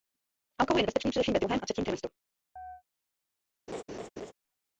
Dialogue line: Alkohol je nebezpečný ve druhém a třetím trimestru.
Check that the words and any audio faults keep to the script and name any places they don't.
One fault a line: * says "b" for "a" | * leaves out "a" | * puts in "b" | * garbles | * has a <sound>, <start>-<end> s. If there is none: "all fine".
* puts in "především"
* has a chirp, 2.6-2.8 s
* has a laugh, 3.7-4.3 s